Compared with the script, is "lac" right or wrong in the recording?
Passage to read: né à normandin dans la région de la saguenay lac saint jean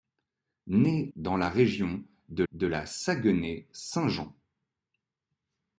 wrong